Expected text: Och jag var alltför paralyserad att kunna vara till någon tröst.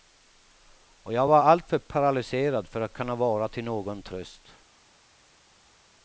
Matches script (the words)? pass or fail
fail